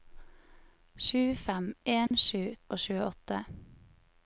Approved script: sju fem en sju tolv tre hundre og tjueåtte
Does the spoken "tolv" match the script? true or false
false